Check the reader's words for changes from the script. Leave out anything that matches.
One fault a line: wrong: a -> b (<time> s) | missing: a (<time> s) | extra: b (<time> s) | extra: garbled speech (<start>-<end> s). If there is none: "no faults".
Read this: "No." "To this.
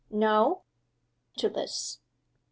no faults